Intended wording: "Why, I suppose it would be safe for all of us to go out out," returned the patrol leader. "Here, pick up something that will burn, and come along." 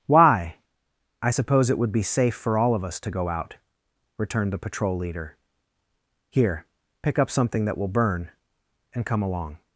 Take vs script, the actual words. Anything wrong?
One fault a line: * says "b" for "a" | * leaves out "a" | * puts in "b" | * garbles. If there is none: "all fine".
* leaves out "out"